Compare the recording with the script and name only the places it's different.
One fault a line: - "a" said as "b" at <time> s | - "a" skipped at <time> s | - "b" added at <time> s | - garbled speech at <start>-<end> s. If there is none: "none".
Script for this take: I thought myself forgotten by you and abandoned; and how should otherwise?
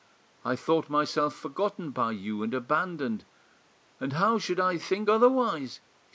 - "I think" added at 4.6 s